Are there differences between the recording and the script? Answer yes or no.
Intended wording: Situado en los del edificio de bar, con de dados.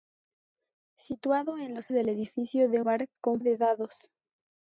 no